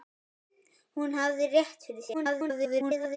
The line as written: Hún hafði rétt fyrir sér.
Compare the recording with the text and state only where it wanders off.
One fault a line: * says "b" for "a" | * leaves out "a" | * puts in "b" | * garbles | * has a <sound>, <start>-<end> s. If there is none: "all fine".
* garbles